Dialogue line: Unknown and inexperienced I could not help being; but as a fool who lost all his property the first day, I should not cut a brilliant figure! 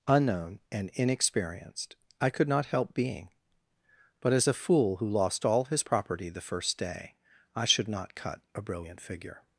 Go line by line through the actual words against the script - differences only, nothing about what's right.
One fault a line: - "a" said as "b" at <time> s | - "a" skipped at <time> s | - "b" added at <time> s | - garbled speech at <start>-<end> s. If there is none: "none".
none